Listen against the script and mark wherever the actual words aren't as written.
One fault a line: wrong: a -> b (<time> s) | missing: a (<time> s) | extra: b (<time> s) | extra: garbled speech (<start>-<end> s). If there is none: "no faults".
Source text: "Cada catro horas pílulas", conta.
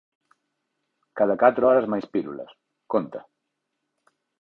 extra: máis (1.9 s)